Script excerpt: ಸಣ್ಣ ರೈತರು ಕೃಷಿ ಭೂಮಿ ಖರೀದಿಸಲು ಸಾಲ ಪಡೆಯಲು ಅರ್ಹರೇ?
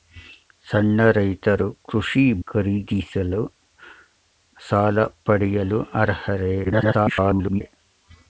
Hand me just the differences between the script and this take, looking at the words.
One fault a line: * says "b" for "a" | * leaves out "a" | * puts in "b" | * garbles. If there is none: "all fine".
* leaves out "ಭೂಮಿ"
* garbles